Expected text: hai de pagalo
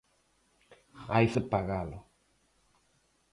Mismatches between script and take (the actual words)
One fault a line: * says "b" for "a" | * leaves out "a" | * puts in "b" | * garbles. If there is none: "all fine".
all fine